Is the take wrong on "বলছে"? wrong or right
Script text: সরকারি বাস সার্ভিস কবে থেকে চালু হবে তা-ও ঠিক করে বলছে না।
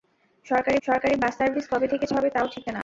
wrong